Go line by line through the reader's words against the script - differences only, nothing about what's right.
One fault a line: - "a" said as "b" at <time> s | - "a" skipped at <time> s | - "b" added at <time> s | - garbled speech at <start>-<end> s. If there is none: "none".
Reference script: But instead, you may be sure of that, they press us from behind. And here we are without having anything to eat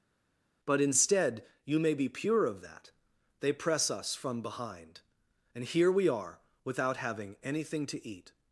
- "sure" said as "pure" at 2.1 s